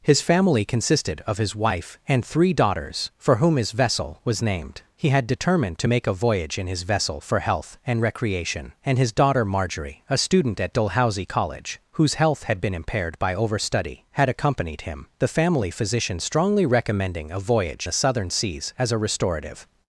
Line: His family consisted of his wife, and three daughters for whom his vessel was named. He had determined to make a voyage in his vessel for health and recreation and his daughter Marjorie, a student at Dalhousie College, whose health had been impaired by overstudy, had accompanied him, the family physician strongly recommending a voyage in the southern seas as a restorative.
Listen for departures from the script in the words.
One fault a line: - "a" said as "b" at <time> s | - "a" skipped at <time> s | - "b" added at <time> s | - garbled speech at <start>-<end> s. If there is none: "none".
- "in" skipped at 17.9 s